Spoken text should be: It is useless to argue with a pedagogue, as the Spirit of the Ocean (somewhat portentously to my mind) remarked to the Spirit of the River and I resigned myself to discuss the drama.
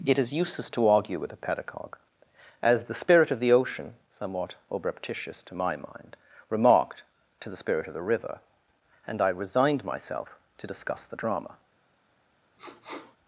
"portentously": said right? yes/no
no